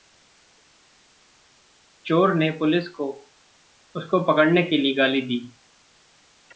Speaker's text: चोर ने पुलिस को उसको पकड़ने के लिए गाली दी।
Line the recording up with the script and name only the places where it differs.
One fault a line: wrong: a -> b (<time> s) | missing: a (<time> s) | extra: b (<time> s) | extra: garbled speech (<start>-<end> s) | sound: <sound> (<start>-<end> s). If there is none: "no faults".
no faults